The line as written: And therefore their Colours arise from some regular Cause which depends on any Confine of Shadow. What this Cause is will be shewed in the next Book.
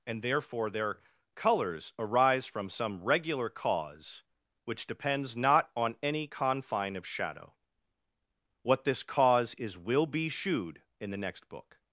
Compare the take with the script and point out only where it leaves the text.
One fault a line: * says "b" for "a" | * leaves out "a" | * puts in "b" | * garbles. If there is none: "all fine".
* puts in "not"